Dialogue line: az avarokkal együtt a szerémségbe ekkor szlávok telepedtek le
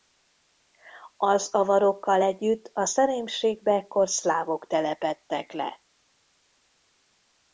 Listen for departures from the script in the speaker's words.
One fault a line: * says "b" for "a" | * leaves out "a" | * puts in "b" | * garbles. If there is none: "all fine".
all fine